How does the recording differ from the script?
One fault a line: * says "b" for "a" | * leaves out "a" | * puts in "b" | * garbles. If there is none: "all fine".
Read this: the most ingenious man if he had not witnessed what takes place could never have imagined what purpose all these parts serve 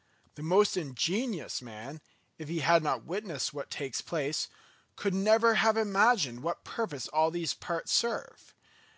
all fine